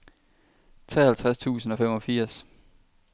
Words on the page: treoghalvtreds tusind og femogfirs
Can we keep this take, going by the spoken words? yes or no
yes